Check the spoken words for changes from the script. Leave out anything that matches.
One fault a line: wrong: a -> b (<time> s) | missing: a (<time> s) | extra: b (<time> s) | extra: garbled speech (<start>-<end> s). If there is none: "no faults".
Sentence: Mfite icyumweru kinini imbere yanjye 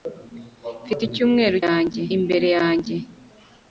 wrong: kinini -> yanjye (1.6 s)